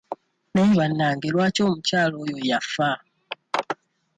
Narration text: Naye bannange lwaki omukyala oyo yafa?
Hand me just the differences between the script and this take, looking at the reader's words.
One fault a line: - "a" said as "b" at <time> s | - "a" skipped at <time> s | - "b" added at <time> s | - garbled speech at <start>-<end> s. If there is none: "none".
none